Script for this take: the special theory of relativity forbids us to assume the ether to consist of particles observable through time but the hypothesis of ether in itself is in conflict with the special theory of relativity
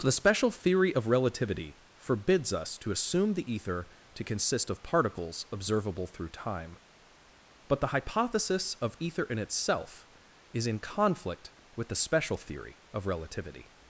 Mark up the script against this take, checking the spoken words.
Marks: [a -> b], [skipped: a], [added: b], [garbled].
the special theory of relativity forbids us to assume the ether to consist of particles observable through time but the hypothesis of ether in itself is in conflict with the special theory of relativity